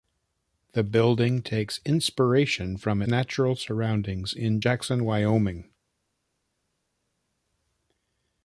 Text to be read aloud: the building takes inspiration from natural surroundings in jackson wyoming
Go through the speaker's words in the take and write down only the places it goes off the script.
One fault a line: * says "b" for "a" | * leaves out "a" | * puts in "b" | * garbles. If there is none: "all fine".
all fine